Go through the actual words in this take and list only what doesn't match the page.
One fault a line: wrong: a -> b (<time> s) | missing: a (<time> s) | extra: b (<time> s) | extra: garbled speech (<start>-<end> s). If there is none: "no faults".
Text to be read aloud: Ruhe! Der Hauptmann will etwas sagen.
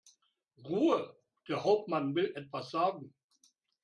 no faults